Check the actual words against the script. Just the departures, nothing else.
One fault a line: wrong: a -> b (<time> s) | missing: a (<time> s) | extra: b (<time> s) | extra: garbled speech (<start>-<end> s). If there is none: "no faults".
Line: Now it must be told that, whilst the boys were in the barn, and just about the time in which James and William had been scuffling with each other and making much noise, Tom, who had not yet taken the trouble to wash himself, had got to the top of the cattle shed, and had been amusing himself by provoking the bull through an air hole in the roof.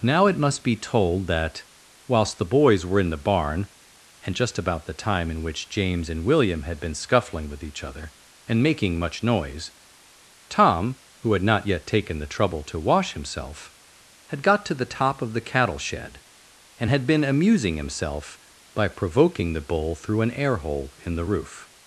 no faults